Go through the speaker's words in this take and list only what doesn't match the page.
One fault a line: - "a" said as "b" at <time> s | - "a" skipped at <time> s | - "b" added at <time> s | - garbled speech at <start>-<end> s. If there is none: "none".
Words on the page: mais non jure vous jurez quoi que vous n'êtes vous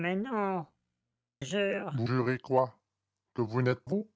none